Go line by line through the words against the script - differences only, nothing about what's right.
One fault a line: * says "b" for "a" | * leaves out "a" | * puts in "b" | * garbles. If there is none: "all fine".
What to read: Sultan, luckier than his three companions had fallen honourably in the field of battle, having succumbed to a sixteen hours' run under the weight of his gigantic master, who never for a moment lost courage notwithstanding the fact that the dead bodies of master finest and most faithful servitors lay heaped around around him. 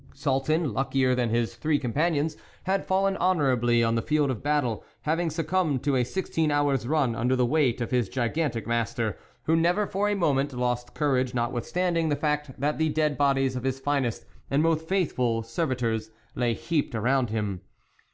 * says "on" for "in"
* says "his" for "master"
* leaves out "around"